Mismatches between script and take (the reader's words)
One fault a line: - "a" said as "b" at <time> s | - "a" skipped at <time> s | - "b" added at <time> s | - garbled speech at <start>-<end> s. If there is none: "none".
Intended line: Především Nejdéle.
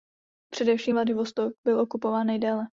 - "Vladivostok byl okupován" added at 0.9 s